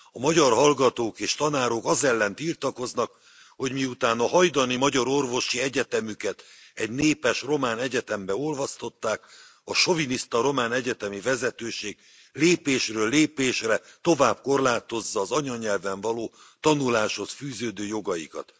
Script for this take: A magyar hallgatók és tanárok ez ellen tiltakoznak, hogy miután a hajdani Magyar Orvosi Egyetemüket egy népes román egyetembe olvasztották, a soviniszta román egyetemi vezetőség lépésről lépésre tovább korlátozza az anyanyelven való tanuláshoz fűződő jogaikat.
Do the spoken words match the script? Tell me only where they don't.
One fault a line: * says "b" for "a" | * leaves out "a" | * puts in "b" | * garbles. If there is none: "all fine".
* says "az" for "ez"